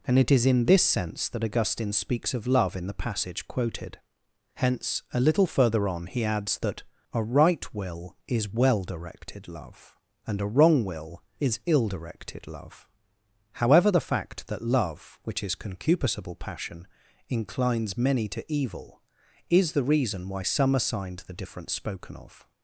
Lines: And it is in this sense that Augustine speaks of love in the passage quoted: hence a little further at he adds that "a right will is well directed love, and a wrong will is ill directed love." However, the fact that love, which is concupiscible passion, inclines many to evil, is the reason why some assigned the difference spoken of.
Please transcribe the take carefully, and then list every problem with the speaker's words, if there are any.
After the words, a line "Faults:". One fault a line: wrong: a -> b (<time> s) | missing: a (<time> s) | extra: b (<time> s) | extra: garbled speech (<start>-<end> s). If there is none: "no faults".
And it is in this sense that Augustine speaks of love in the passage quoted: hence a little further on he adds that "a right will is well directed love, and a wrong will is ill directed love." However, the fact that love, which is concupiscible passion, inclines many to evil, is the reason why some assigned the difference spoken of.
Faults:
wrong: at -> on (5.9 s)